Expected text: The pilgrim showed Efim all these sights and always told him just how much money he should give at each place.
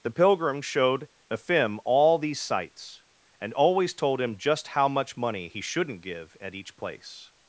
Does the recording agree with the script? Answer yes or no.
no